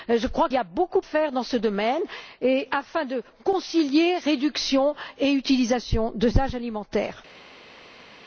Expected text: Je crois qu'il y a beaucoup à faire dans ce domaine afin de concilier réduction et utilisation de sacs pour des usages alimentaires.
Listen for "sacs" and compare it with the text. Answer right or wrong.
wrong